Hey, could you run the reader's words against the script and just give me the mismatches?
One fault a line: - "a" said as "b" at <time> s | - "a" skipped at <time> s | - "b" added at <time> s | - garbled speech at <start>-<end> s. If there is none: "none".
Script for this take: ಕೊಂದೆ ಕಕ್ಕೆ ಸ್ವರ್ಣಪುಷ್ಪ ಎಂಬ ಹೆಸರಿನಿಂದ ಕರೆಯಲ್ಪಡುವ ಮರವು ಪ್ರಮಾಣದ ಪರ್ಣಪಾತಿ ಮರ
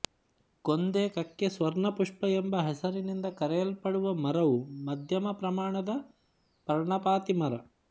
- "ಮಧ್ಯಮ" added at 4.9 s